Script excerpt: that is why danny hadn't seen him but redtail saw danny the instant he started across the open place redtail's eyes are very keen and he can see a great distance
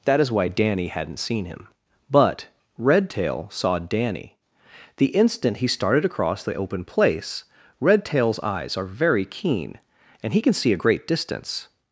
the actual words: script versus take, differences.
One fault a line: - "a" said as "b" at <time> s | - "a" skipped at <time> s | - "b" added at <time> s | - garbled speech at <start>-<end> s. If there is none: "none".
none